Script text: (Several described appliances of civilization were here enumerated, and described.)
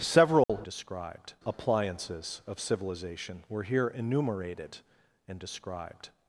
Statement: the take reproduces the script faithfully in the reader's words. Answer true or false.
true